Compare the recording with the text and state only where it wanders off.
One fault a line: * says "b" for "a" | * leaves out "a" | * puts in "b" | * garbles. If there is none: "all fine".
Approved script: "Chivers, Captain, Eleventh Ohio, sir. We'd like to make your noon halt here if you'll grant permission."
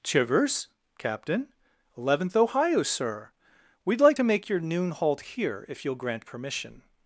all fine